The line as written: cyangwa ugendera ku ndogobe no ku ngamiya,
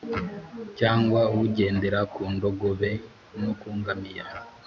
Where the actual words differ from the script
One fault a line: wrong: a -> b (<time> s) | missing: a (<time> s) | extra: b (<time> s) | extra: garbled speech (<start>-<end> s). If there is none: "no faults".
no faults